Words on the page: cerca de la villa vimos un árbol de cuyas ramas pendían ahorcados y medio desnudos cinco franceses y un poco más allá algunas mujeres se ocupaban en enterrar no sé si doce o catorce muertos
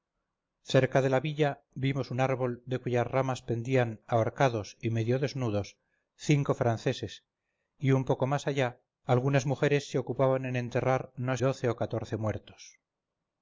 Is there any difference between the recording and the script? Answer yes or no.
yes